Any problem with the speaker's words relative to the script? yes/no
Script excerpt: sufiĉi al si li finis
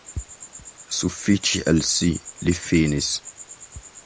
no